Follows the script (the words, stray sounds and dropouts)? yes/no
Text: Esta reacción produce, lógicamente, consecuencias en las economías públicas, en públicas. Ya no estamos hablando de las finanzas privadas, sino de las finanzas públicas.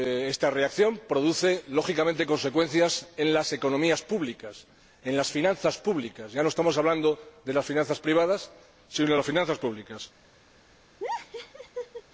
no